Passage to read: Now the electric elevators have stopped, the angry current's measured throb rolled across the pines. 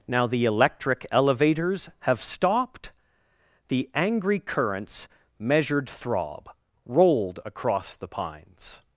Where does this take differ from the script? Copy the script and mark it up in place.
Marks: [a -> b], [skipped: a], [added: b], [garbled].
Now the electric elevators have stopped, the angry current's measured throb rolled across the pines.